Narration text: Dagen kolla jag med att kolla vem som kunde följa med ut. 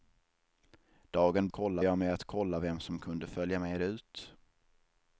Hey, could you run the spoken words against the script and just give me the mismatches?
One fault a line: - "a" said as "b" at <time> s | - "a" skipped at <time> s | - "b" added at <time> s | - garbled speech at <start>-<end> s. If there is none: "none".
none